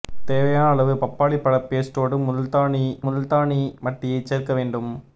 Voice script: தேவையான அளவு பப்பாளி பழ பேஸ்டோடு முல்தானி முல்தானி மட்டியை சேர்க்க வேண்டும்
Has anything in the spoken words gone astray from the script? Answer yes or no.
no